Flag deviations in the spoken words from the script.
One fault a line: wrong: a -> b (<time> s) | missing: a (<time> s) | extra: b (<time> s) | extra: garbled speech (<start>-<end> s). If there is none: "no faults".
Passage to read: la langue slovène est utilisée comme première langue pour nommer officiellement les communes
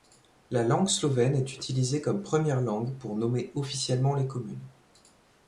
no faults